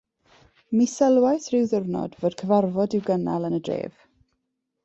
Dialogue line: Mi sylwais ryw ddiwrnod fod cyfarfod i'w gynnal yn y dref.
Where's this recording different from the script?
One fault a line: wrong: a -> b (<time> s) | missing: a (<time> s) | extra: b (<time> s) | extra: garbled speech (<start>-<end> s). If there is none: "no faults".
no faults